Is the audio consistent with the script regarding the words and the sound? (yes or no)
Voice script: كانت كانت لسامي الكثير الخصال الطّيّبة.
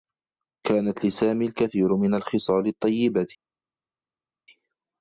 no